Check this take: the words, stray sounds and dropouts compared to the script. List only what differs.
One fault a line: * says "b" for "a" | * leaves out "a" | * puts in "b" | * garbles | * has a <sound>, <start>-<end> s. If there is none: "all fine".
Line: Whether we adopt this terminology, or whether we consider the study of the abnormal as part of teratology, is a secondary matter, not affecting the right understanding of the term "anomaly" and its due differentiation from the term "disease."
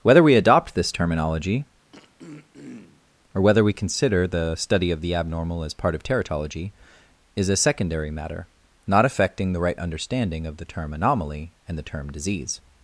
* has a throat clearing, 1.9-3.1 s
* leaves out "its due differentiation from"